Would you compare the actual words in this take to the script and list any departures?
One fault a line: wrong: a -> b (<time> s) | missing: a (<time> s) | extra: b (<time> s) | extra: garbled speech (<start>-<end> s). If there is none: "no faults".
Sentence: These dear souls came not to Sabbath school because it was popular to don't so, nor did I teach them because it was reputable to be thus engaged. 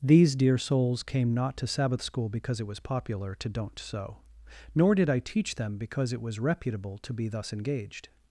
no faults